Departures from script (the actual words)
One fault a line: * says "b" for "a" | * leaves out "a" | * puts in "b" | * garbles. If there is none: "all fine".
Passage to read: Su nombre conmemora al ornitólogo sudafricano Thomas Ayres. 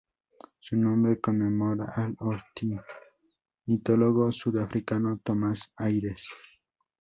all fine